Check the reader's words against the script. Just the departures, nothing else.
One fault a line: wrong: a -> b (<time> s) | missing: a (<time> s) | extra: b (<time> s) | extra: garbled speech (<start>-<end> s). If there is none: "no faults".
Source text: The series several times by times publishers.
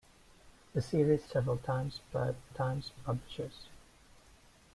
no faults